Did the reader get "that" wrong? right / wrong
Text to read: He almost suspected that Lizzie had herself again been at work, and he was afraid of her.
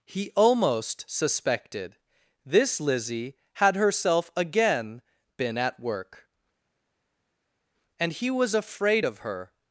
wrong